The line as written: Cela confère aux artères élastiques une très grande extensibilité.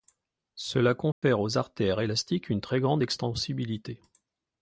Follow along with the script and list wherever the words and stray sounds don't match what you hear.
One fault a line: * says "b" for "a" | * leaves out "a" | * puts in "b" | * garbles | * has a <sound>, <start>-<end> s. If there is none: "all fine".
* has a dropout, 1.1-1.2 s